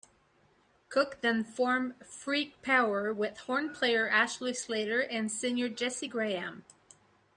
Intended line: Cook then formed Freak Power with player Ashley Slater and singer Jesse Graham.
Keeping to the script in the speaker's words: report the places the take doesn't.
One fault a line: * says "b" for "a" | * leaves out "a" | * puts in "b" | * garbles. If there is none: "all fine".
* puts in "horn"